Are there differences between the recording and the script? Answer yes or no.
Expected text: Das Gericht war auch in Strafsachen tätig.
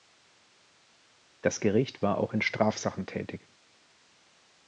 no